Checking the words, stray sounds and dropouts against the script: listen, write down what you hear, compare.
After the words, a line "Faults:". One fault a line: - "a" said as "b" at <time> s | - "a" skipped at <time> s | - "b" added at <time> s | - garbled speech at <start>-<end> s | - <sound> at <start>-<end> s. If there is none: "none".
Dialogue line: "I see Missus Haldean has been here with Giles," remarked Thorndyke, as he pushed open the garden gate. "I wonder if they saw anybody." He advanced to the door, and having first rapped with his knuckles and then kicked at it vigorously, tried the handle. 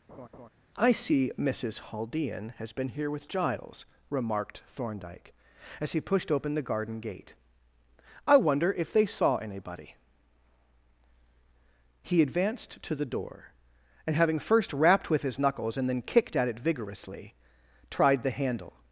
"I see Missus Haldean has been here with Giles," remarked Thorndyke, as he pushed open the garden gate. "I wonder if they saw anybody." He advanced to the door, and having first rapped with his knuckles and then kicked at it vigorously, tried the handle.
Faults:
- laugh at 0.1-0.5 s